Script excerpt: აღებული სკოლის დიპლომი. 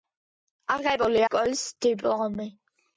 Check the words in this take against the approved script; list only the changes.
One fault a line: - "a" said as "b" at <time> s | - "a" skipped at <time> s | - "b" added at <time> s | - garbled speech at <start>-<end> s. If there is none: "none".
none